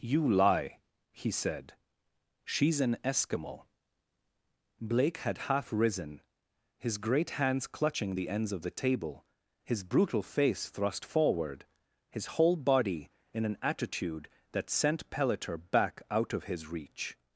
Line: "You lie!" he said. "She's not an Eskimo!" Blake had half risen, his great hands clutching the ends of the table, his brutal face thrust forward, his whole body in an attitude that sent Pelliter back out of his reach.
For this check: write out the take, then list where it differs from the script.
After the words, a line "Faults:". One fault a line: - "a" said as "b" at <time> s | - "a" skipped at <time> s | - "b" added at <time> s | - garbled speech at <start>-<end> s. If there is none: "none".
"You lie!" he said. "She's an Eskimo!" Blake had half risen, his great hands clutching the ends of the table, his brutal face thrust forward, his whole body in an attitude that sent Pelliter back out of his reach.
Faults:
- "not" skipped at 2.8 s